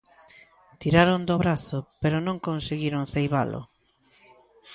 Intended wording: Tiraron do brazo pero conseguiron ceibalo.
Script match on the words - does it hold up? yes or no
no